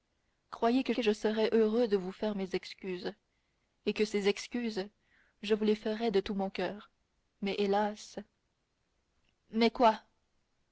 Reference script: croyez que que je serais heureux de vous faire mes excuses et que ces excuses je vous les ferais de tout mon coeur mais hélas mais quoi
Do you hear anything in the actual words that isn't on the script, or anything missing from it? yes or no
no